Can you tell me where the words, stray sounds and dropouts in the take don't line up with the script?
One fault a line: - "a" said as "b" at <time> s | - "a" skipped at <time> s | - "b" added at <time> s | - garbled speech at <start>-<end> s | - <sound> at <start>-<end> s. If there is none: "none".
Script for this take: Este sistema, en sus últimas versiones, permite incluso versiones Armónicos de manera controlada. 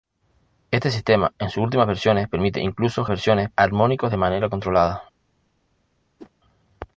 - whoosh at 6.2-6.3 s